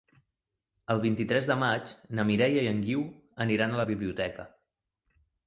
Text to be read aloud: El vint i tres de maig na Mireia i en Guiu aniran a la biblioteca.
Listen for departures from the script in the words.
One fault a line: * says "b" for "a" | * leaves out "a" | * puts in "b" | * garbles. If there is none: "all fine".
all fine